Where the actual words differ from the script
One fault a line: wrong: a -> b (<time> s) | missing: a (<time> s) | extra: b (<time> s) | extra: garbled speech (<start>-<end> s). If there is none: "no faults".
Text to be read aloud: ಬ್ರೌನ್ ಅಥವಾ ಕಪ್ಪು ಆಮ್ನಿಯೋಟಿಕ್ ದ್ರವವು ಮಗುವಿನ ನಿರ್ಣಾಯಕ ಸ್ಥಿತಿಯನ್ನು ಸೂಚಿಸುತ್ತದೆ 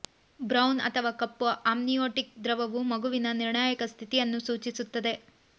no faults